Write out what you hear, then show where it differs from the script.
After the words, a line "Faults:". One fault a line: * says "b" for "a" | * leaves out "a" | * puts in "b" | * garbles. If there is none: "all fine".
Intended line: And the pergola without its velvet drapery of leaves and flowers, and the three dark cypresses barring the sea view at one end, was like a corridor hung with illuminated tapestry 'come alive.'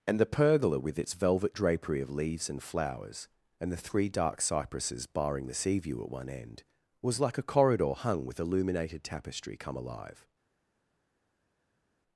And the pergola with its velvet drapery of leaves and flowers, and the three dark cypresses barring the sea view at one end, was like a corridor hung with illuminated tapestry 'come alive.'
Faults:
* says "with" for "without"